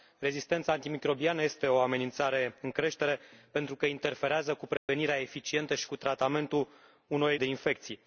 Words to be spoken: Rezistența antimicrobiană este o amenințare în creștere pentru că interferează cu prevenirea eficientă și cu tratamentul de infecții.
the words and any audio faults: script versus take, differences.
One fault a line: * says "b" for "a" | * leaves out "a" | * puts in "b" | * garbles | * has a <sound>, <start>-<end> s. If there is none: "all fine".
* has a dropout, 4.8-4.9 s